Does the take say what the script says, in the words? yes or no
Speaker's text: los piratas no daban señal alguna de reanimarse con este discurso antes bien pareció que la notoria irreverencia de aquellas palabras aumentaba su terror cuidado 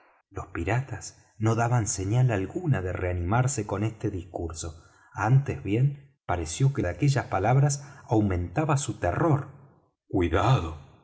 no